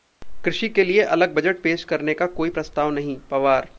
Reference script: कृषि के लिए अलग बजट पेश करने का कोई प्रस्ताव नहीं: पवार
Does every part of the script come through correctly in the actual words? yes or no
yes